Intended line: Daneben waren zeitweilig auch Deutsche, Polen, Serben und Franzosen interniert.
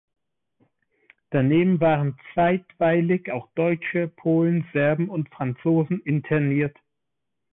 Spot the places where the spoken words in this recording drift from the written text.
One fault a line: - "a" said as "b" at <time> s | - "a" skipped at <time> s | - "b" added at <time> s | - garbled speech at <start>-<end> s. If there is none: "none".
none